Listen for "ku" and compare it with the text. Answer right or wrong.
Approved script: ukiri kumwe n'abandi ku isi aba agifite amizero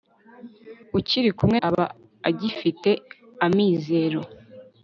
wrong